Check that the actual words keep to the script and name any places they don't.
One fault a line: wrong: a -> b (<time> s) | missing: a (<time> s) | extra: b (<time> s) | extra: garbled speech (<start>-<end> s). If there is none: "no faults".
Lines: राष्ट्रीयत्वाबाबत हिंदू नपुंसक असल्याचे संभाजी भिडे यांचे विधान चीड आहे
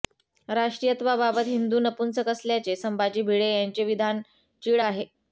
no faults